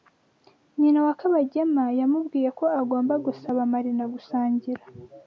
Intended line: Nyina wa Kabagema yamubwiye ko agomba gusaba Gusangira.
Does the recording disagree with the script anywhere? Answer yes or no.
yes